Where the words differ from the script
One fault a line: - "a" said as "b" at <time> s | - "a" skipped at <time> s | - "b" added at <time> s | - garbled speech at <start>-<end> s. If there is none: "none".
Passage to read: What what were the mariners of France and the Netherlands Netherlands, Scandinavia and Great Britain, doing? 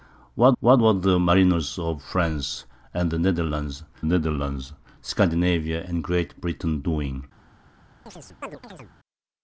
none